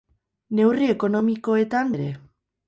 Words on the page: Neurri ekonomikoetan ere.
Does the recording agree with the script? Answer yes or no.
yes